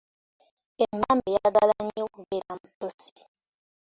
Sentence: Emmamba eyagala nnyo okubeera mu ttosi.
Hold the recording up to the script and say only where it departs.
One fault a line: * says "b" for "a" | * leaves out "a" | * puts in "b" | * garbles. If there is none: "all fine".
all fine